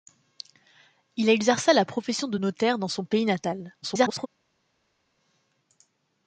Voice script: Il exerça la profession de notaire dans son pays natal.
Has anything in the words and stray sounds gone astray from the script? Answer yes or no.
yes